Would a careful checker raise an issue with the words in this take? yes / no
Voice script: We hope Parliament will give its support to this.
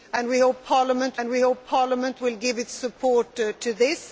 yes